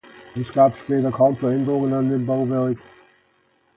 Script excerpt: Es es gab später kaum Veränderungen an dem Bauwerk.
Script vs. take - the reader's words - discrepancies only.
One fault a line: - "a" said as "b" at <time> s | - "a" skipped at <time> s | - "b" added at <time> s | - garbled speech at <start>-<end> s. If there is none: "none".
- "es" skipped at 0.5 s